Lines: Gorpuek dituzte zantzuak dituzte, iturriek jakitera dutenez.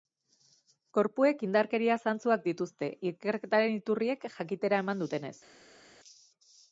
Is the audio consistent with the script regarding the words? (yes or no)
no